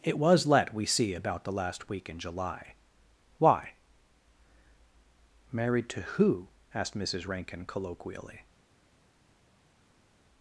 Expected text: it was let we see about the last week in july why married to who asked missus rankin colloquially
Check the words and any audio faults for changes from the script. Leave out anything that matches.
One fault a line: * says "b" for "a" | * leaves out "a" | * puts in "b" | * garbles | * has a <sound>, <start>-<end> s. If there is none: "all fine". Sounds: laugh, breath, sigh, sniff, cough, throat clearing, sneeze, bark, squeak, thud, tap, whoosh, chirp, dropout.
all fine